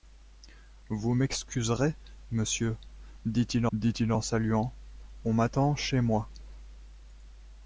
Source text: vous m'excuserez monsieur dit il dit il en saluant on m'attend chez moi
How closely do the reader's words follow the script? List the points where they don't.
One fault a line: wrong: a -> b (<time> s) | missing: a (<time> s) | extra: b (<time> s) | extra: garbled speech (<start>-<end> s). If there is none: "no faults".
no faults